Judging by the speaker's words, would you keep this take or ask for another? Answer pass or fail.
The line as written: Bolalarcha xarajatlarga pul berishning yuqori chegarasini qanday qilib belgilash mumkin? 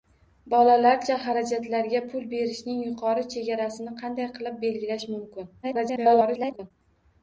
fail